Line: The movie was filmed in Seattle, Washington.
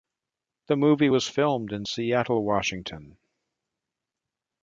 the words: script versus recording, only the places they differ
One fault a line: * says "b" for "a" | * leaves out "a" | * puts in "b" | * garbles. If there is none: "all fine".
all fine